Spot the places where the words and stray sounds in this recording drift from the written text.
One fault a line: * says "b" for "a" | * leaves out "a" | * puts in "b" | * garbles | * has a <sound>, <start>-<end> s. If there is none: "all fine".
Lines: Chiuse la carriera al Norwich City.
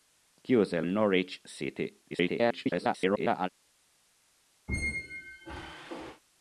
* leaves out "la carriera al"
* garbles
* has a squeak, 4.7-6.2 s